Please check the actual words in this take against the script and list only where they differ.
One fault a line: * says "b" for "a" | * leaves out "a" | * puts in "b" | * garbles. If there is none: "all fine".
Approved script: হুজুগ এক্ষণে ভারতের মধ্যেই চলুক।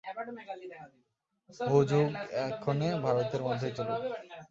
all fine